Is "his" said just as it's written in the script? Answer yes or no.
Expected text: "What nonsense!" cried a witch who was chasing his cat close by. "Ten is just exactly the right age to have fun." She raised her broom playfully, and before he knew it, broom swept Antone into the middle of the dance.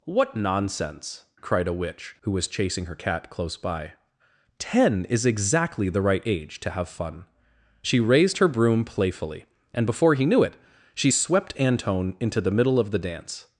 no